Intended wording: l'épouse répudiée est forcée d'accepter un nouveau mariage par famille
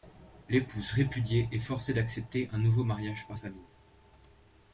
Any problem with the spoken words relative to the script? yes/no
no